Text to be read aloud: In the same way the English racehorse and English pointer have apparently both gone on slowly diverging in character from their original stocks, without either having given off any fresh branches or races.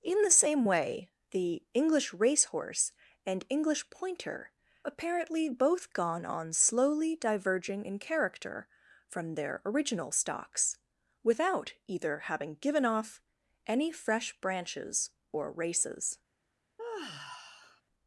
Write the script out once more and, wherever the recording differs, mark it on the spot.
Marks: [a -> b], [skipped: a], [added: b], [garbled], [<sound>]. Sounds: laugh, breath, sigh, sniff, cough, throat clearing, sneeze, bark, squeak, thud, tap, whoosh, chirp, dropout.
In the same way the English racehorse and English pointer [skipped: have] apparently both gone on slowly diverging in character from their original stocks, without either having given off any fresh branches or races. [sigh]